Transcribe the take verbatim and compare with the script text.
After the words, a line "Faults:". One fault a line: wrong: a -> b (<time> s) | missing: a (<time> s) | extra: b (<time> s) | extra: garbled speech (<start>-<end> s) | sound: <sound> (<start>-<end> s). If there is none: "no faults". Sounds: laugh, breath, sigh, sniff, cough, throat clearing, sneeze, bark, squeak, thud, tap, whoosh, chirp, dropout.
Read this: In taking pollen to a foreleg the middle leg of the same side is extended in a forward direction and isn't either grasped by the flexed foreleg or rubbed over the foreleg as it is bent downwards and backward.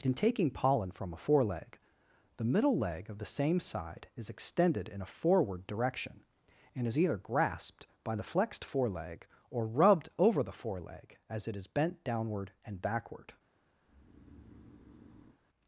In taking pollen from a foreleg the middle leg of the same side is extended in a forward direction and is either grasped by the flexed foreleg or rubbed over the foreleg as it is bent downward and backward.
Faults:
wrong: to -> from (0.9 s)
wrong: isn't -> is (6.9 s)
wrong: downwards -> downward (12.1 s)
sound: breath (13.8-15.4 s)